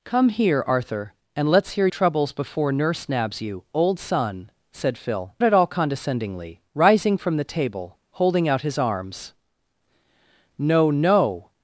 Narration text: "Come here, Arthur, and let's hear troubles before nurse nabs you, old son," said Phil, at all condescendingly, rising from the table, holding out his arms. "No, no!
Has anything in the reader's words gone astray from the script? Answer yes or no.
no